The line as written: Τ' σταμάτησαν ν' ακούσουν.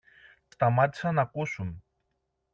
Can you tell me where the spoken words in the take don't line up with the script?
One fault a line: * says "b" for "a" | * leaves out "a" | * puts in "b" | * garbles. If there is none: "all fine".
all fine